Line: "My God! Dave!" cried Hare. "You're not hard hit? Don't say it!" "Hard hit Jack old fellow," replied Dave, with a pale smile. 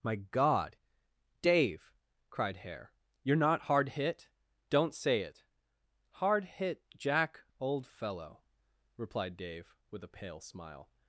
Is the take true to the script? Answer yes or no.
yes